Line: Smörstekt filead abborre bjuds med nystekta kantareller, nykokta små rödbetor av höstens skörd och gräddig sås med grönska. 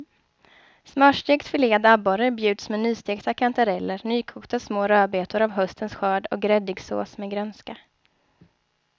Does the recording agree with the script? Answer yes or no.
yes